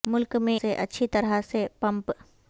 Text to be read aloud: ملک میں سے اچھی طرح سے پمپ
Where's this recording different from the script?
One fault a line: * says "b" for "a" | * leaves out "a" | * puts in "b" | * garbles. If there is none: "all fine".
all fine